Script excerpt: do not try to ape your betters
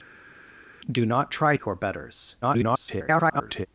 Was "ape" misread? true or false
true